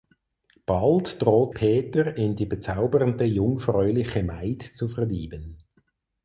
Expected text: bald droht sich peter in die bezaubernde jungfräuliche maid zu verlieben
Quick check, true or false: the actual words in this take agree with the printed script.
false